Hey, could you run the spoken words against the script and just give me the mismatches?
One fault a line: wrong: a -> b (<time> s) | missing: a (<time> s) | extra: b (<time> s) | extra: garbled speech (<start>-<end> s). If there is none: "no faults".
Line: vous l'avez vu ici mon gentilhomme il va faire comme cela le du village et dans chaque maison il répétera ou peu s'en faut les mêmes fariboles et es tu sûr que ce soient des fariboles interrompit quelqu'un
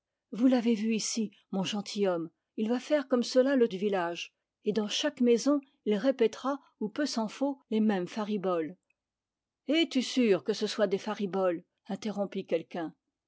no faults